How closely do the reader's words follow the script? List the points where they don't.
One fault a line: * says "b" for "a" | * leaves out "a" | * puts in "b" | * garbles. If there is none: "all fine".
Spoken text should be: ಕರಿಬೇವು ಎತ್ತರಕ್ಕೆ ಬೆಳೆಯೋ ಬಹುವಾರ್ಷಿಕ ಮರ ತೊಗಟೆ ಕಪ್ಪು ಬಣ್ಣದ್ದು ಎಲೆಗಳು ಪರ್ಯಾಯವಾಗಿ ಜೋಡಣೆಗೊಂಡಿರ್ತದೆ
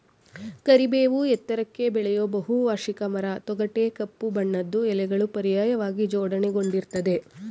all fine